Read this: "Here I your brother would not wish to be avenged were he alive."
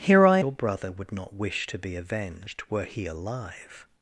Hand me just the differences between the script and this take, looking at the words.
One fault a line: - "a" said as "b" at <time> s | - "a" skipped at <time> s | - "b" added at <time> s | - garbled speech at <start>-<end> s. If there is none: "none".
none